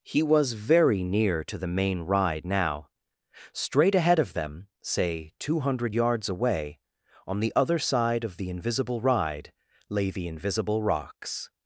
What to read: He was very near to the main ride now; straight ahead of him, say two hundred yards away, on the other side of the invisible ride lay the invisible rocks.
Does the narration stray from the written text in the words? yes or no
yes